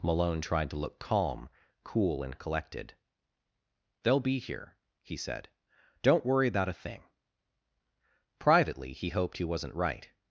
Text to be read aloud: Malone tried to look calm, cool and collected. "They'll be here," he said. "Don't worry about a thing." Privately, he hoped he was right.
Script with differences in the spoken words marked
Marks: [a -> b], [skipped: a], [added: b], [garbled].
Malone tried to look calm, cool and collected. "They'll be here," he said. "Don't worry about a thing." Privately, he hoped he [was -> wasn't] right.